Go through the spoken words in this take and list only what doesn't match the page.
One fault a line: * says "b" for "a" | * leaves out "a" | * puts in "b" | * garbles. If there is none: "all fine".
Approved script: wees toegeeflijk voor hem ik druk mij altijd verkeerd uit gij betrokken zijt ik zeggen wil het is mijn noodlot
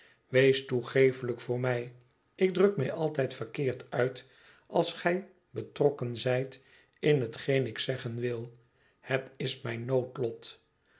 * says "mij" for "hem"
* puts in "als"
* puts in "in hetgeen"